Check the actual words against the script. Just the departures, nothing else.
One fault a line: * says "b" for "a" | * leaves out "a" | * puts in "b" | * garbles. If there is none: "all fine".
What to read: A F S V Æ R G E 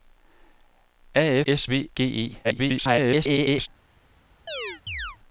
* leaves out "F"
* leaves out "Æ R"
* garbles